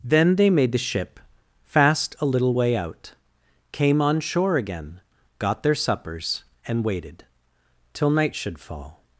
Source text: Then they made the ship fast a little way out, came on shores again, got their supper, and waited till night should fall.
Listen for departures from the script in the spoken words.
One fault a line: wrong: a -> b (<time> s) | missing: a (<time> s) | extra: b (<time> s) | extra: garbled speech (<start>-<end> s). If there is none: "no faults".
wrong: shores -> shore (4.2 s)
wrong: supper -> suppers (5.7 s)